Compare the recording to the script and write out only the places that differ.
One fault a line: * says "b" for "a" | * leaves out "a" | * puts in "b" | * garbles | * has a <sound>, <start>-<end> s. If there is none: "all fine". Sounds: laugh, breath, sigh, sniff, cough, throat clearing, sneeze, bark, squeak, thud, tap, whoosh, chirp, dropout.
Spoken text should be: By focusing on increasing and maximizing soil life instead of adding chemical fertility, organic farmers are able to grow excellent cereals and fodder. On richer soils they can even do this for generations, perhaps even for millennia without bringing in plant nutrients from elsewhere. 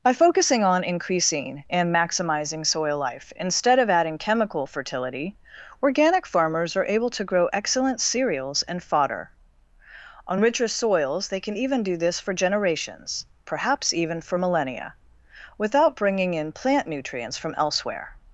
all fine